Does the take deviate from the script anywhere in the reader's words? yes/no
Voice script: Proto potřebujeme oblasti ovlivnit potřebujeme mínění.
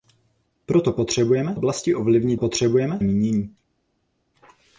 no